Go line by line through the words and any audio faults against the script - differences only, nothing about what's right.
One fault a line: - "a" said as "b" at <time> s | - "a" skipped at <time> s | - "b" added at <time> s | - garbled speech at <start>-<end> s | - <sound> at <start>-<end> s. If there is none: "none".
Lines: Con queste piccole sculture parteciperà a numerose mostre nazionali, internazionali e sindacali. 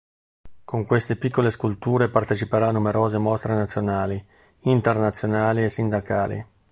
none